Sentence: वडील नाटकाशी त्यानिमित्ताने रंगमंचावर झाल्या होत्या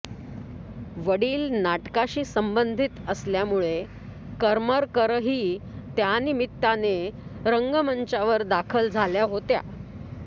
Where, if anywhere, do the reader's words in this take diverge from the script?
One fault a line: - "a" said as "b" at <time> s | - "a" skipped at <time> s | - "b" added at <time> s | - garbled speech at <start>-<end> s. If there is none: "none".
- "संबंधित असल्यामुळे करमरकरही" added at 2.2 s
- "दाखल" added at 8.4 s